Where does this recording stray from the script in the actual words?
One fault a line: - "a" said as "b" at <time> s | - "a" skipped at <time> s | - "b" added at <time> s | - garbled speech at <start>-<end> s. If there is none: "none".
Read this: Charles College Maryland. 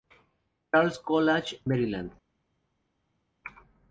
none